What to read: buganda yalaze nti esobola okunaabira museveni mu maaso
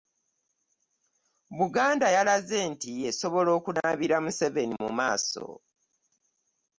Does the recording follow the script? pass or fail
pass